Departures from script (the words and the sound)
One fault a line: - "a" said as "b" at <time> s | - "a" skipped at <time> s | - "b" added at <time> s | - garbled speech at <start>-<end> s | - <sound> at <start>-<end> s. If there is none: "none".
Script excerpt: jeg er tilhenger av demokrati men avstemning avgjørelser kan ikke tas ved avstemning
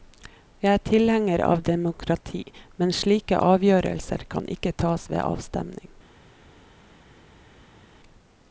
- "avstemning" said as "slike" at 3.0 s